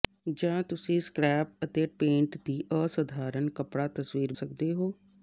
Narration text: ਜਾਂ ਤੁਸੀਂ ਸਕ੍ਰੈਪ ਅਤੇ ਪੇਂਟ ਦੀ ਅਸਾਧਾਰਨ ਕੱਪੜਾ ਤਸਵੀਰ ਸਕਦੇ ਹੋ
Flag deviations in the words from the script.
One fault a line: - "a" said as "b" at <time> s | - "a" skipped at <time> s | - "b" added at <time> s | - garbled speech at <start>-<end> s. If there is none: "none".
none